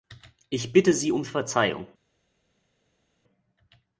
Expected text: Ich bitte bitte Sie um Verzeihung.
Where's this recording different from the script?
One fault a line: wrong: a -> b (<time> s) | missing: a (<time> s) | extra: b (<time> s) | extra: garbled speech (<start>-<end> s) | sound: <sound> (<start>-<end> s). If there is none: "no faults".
missing: bitte (0.9 s)